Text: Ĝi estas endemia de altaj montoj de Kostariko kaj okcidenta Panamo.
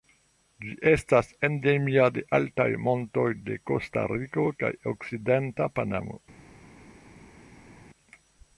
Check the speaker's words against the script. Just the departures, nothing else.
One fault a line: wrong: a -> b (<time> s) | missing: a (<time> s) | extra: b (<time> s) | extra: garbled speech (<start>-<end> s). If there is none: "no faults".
no faults